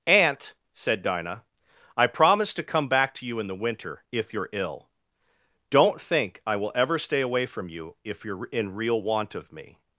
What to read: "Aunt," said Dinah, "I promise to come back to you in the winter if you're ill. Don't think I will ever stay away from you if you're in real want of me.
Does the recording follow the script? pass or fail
pass